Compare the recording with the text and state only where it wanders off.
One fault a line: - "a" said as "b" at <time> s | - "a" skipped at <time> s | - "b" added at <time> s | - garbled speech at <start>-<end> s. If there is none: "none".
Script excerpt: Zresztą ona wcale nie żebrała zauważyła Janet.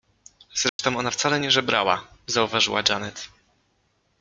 none